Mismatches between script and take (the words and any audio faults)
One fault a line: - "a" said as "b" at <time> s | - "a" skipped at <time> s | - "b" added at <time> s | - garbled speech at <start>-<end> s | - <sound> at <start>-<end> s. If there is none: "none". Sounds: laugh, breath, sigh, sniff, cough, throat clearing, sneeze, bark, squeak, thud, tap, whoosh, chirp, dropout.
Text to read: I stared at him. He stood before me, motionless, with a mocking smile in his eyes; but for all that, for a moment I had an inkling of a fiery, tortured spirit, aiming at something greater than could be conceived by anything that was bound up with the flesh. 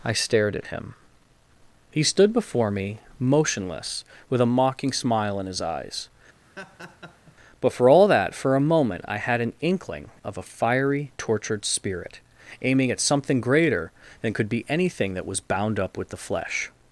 - laugh at 6.4-7.4 s
- "conceived by" skipped at 14.7 s